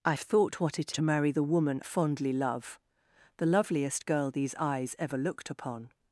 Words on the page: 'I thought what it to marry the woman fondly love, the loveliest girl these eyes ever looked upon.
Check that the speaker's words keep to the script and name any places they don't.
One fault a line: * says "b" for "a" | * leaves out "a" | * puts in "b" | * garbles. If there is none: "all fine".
all fine